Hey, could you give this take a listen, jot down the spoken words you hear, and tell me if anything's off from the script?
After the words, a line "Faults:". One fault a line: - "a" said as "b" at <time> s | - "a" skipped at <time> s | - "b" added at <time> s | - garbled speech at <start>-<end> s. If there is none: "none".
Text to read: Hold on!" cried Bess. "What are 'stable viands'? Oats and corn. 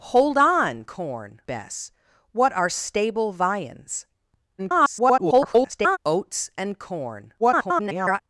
Hold on!" corn Bess. "What are 'stable viands'? [garbled] Oats and corn. [garbled]
Faults:
- "cried" said as "corn" at 0.8 s
- garbled speech at 4.6-6.0 s
- garbled speech at 7.4-8.2 s